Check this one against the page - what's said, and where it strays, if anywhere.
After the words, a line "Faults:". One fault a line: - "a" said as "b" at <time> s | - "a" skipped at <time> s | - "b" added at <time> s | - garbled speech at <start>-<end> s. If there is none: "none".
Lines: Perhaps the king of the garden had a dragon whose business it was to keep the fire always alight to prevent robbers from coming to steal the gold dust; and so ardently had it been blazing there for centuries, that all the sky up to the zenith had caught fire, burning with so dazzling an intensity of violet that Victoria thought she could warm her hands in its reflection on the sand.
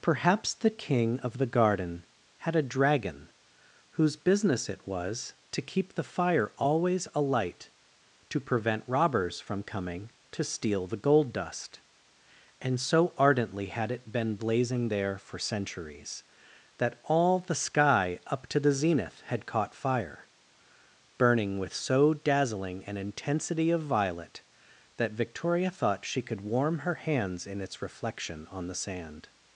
Perhaps the king of the garden had a dragon whose business it was to keep the fire always alight to prevent robbers from coming to steal the gold dust; and so ardently had it been blazing there for centuries, that all the sky up to the zenith had caught fire, burning with so dazzling an intensity of violet that Victoria thought she could warm her hands in its reflection on the sand.
Faults:
none